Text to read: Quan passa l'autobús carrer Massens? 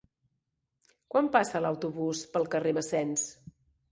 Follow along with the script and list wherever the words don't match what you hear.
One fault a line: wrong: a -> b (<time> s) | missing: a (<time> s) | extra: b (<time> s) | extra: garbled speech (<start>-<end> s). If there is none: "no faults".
extra: pel (2.4 s)